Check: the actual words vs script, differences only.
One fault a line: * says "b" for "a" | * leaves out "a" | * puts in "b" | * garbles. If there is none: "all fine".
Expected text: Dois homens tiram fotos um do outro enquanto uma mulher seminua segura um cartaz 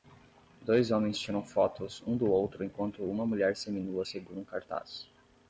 all fine